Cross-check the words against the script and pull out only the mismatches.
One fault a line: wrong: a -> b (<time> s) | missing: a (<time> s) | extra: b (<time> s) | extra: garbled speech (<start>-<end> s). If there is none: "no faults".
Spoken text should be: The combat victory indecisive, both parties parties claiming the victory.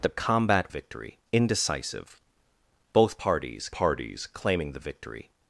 no faults